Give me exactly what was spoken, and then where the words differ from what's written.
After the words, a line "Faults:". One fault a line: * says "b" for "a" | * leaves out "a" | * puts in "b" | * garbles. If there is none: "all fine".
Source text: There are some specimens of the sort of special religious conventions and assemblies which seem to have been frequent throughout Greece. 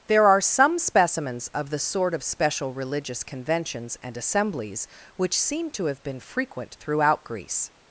There are some specimens of the sort of special religious conventions and assemblies which seem to have been frequent throughout Greece.
Faults:
all fine